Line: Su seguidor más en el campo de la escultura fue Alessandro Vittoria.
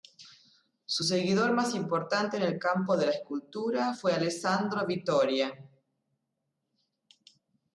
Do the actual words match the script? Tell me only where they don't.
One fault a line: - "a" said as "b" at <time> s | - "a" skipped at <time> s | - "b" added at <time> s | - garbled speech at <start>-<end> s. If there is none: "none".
- "importante" added at 1.7 s